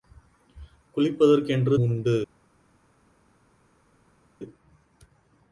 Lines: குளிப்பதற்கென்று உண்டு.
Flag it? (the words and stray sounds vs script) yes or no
no